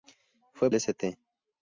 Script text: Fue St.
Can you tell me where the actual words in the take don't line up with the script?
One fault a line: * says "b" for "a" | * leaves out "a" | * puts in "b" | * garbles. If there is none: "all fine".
all fine